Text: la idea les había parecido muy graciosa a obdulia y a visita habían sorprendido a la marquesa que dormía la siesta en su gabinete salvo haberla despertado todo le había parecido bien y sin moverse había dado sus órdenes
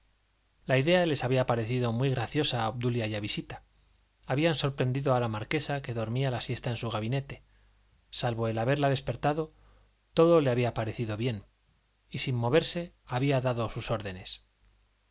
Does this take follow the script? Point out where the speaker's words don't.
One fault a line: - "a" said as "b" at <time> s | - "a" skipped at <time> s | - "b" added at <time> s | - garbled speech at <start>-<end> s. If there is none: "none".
- "el" added at 8.5 s